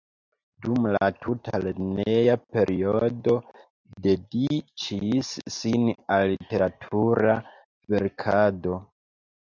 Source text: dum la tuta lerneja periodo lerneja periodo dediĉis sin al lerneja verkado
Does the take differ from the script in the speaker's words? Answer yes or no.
yes